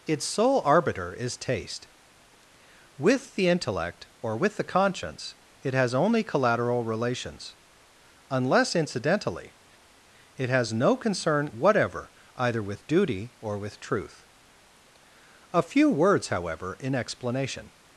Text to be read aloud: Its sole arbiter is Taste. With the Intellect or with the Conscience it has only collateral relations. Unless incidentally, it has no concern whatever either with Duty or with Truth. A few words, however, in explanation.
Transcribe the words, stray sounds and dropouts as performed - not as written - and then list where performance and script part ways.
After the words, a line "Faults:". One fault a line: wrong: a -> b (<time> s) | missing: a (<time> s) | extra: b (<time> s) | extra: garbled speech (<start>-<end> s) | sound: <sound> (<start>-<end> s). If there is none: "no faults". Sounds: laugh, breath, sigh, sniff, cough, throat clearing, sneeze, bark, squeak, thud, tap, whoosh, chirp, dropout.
Its sole arbiter is Taste. With the Intellect or with the Conscience it has only collateral relations. Unless incidentally, it has no concern whatever either with Duty or with Truth. A few words, however, in explanation.
Faults:
no faults